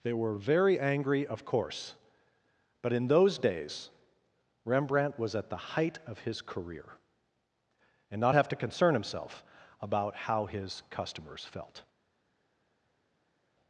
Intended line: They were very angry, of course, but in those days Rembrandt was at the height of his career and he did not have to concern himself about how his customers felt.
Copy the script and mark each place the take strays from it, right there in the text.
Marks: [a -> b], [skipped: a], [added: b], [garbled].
They were very angry, of course, but in those days Rembrandt was at the height of his career and [skipped: he did] not have to concern himself about how his customers felt.